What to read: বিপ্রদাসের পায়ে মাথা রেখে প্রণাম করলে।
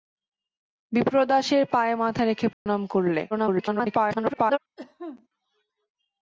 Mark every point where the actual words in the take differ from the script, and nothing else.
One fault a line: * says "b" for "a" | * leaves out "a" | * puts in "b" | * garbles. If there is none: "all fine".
* garbles